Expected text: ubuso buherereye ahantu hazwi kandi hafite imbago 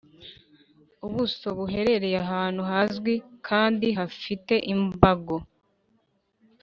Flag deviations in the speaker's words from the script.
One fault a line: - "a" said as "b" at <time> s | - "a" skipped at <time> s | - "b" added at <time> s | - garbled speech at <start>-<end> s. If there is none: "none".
none